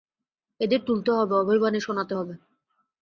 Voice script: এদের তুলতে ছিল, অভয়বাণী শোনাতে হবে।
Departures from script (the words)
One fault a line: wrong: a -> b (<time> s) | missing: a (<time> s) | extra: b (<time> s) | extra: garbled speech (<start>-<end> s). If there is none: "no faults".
wrong: ছিল -> হবে (1.1 s)